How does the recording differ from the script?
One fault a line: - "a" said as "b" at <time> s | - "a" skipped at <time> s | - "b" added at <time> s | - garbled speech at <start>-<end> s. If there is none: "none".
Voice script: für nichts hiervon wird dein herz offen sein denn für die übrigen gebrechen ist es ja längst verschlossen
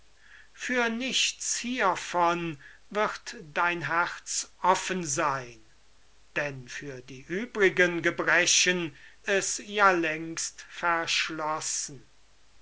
- "ist" skipped at 9.0 s